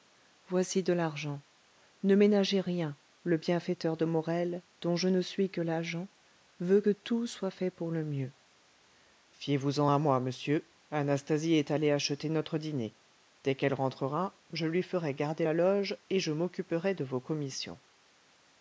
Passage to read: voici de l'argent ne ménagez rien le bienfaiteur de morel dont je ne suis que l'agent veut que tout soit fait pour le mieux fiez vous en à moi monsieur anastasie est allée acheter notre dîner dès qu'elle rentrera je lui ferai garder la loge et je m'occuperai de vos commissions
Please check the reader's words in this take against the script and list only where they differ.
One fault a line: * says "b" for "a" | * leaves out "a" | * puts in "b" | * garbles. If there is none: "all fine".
all fine